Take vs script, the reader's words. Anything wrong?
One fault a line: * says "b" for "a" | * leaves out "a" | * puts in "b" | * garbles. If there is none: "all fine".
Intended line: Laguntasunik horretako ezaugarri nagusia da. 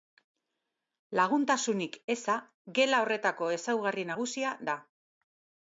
* puts in "eza gela"